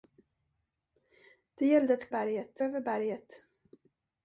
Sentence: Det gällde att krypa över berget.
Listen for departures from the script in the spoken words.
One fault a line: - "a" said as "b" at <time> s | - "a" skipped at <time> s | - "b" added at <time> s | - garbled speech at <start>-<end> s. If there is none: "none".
- "krypa" said as "berget" at 2.1 s